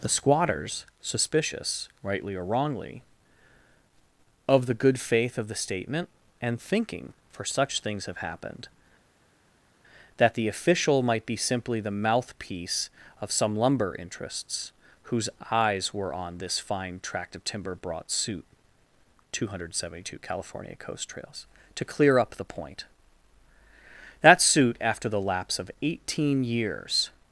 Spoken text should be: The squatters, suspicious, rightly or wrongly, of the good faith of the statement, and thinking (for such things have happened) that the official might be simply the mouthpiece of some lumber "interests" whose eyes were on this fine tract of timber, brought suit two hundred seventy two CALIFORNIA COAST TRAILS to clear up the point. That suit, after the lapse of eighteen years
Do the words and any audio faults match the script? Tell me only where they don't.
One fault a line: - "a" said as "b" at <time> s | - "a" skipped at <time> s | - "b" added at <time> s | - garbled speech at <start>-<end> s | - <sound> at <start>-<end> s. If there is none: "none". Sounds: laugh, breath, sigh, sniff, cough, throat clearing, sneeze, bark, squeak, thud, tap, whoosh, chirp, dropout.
none